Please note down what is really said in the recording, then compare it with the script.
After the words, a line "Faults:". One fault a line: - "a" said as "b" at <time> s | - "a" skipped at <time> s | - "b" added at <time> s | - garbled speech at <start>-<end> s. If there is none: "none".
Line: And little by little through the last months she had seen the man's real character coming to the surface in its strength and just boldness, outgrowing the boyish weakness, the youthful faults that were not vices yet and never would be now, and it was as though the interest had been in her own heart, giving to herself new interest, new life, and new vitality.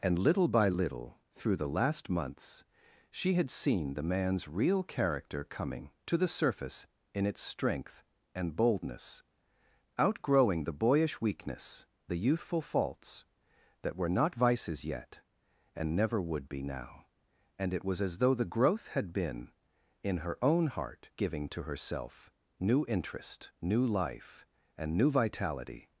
And little by little through the last months she had seen the man's real character coming to the surface in its strength and boldness, outgrowing the boyish weakness, the youthful faults that were not vices yet and never would be now, and it was as though the growth had been in her own heart, giving to herself new interest, new life, and new vitality.
Faults:
- "just" skipped at 8.6 s
- "interest" said as "growth" at 18.4 s